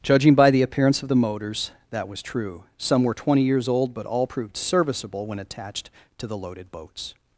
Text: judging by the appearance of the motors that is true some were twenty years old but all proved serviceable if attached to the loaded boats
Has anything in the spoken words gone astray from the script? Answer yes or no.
yes